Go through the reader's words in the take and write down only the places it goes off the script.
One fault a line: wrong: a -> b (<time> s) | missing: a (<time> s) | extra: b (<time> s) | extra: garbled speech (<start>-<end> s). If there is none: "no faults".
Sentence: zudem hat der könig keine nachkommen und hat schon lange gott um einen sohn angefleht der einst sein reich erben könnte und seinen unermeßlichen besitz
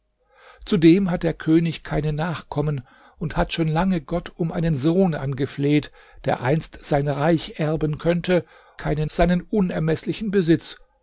wrong: und -> keine (8.8 s)